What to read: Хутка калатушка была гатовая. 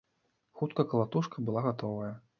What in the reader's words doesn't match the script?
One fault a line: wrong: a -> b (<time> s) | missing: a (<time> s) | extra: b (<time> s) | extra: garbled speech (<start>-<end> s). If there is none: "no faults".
no faults